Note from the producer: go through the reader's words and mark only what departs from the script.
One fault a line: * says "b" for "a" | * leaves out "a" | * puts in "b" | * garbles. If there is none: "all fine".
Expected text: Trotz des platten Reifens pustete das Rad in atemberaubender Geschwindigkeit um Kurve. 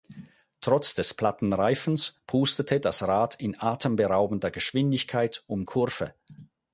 all fine